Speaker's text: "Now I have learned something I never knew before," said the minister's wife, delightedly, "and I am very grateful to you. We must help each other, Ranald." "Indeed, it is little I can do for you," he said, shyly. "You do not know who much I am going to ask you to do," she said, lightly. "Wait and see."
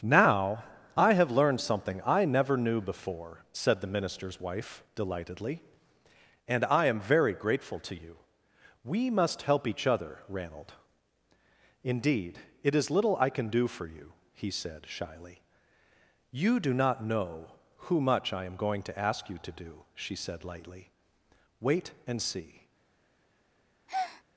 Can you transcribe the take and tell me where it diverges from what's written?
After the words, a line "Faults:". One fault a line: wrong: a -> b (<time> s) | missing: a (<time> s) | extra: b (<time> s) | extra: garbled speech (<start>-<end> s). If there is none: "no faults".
"Now I have learned something I never knew before," said the minister's wife, delightedly, "and I am very grateful to you. We must help each other, Ranald." "Indeed, it is little I can do for you," he said, shyly. "You do not know who much I am going to ask you to do," she said, lightly. "Wait and see."
Faults:
no faults